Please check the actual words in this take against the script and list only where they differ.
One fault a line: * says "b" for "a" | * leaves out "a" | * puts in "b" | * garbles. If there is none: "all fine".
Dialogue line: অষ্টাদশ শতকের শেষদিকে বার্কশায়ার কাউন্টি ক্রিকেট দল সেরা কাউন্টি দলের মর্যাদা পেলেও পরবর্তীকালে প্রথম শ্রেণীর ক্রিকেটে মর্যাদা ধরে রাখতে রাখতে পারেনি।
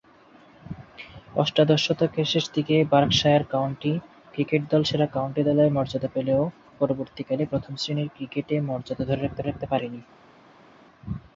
all fine